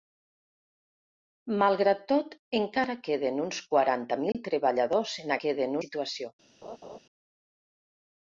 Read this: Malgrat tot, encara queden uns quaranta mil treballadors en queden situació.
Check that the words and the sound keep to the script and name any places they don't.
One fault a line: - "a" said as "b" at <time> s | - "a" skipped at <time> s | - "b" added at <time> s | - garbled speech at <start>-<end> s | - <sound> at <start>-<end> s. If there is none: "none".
- dropout at 4.3-4.3 s
- laugh at 6.6-7.0 s